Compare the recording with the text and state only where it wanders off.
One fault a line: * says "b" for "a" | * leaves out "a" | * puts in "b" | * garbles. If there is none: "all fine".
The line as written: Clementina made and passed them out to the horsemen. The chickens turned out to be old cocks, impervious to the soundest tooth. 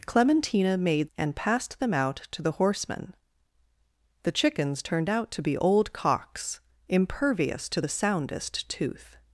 all fine